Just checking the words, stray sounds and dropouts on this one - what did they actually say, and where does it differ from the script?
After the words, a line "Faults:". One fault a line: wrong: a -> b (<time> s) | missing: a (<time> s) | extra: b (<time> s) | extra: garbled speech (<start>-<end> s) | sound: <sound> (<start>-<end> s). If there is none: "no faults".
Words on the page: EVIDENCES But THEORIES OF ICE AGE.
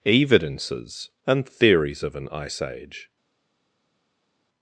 EVIDENCES AND THEORIES OF AN ICE AGE.
Faults:
wrong: But -> AND (1.3 s)
extra: AN (2.1 s)